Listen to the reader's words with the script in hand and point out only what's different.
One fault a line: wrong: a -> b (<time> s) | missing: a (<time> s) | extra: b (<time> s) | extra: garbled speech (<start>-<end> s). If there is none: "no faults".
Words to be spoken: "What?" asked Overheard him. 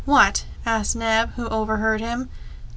extra: Neb who (0.9 s)